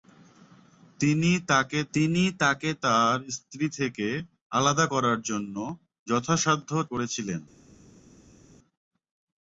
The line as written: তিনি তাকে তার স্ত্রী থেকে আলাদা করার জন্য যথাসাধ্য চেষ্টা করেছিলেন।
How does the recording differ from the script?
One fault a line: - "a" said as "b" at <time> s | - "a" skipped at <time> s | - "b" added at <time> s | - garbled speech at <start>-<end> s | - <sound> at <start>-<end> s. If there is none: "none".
- "তিনি তাকে" added at 1.9 s
- "চেষ্টা" skipped at 6.7 s